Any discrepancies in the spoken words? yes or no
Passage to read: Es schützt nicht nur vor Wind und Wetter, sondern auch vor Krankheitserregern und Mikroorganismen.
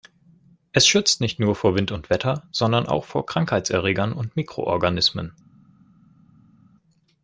no